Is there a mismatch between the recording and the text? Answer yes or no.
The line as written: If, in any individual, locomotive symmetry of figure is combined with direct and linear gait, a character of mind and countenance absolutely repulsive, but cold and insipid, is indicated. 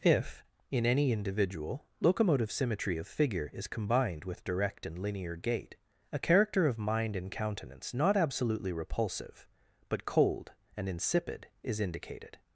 yes